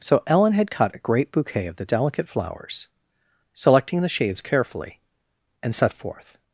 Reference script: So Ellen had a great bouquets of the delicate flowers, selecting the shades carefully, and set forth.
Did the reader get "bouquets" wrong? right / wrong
wrong